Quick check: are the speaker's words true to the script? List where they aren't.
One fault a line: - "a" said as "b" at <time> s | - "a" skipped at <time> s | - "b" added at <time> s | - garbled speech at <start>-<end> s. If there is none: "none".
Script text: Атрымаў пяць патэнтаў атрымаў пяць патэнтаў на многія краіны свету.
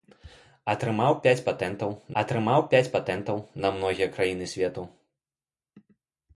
none